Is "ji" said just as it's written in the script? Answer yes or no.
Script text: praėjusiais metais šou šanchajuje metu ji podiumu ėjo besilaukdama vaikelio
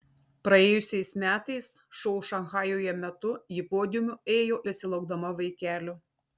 yes